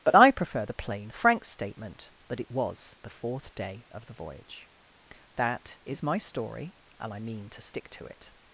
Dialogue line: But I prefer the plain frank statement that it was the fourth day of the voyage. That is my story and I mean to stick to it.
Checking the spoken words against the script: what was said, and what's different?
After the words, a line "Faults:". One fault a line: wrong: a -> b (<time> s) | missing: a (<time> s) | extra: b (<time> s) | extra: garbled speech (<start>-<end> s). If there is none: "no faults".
But I prefer the plain frank statement that it was the fourth day of the voyage. That is my story and I mean to stick to it.
Faults:
no faults